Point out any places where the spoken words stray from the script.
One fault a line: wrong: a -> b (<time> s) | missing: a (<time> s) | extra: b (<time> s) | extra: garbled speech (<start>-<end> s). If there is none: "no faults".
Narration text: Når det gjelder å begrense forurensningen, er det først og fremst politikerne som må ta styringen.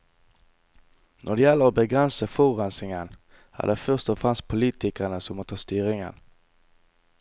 no faults